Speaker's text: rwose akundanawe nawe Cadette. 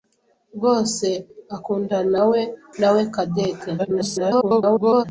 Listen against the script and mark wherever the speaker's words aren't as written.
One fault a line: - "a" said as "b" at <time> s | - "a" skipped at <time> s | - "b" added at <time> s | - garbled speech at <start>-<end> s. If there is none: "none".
- garbled speech at 3.8-5.0 s